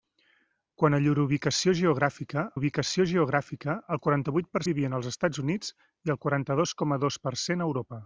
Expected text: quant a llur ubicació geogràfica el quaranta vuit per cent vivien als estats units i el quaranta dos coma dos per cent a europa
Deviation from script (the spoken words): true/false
true